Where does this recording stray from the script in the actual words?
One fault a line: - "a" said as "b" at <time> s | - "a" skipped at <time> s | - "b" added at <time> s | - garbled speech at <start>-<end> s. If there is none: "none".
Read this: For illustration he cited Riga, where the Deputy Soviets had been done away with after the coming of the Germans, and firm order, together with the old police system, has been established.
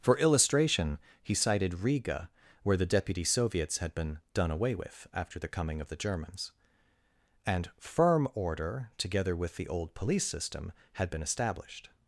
- "has" said as "had" at 10.9 s